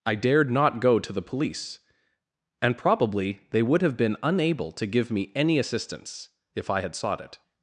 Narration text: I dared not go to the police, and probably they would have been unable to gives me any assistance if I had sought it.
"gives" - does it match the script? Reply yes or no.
no